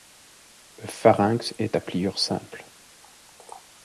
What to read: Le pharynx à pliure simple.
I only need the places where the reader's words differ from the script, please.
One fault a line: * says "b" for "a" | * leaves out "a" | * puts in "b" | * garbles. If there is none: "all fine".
* puts in "est"